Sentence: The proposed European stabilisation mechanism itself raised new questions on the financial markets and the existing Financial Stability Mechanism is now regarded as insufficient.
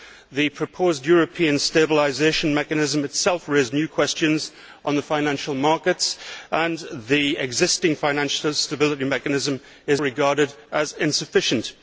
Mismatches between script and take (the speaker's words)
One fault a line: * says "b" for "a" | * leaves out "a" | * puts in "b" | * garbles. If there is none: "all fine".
* leaves out "now"